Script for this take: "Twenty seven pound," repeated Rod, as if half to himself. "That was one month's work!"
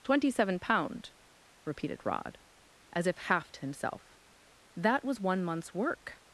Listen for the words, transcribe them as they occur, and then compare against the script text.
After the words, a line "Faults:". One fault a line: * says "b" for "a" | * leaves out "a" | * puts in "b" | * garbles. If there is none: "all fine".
"Twenty seven pound," repeated Rod, as if half to himself. "That was one month's work!"
Faults:
all fine